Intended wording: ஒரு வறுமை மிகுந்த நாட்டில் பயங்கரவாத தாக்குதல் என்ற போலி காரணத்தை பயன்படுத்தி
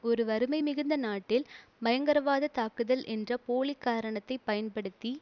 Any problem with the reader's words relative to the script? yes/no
no